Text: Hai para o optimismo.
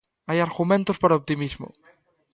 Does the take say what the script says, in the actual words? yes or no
no